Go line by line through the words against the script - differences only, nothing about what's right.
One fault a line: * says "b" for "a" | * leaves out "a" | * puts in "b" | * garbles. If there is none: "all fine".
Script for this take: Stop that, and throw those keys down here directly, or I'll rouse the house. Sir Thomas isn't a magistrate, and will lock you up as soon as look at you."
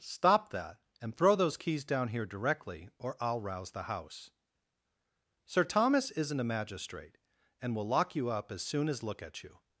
all fine